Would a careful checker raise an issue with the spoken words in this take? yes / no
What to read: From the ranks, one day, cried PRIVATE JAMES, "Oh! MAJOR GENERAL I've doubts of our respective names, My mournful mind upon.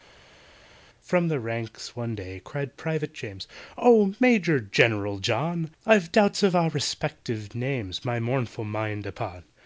yes